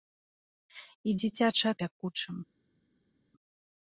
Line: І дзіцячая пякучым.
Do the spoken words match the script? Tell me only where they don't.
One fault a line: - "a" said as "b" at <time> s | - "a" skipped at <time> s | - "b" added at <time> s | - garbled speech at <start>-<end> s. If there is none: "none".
none